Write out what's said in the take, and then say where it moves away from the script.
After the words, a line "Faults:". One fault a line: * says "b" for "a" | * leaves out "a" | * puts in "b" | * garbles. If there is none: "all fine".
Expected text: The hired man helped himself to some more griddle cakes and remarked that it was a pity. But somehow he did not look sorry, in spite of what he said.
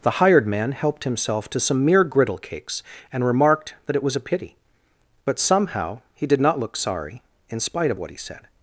The hired man helped himself to some mere griddle cakes and remarked that it was a pity. But somehow he did not look sorry, in spite of what he said.
Faults:
* says "mere" for "more"